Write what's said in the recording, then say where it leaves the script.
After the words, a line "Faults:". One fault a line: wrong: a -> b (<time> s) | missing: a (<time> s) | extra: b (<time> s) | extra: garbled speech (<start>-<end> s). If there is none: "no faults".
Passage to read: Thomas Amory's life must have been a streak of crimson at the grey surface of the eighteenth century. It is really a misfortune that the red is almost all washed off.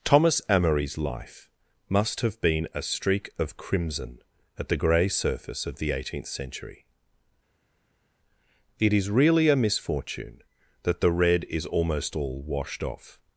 Thomas Amory's life must have been a streak of crimson at the grey surface of the eighteenth century. It is really a misfortune that the red is almost all washed off.
Faults:
no faults